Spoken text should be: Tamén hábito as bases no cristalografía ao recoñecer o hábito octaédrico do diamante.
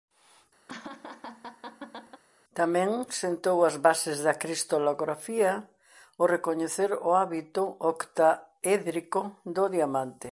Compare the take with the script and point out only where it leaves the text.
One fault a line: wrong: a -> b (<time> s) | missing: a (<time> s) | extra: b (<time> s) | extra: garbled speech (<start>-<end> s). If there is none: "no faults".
wrong: hábito -> sentou (3.1 s)
wrong: no -> da (4.2 s)